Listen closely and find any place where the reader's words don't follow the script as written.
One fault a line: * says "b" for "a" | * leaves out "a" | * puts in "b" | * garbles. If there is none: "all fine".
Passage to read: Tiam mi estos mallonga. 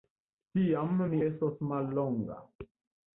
all fine